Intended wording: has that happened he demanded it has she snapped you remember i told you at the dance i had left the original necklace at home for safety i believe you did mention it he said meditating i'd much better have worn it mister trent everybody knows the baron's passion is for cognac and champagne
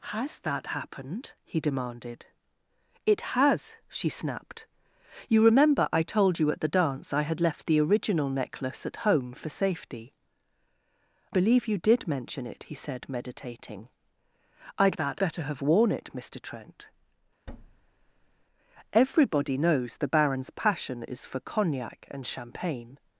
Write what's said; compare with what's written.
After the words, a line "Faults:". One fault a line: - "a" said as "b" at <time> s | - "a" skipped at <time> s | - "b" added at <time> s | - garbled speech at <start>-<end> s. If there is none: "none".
has that happened he demanded it has she snapped you remember i told you at the dance i had left the original necklace at home for safety believe you did mention it he said meditating i'd that better have worn it mister trent everybody knows the baron's passion is for cognac and champagne
Faults:
- "i" skipped at 10.1 s
- "much" said as "that" at 14.9 s